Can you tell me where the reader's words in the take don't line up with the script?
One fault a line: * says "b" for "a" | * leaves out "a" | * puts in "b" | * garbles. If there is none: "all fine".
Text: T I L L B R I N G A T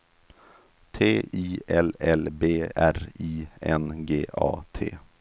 all fine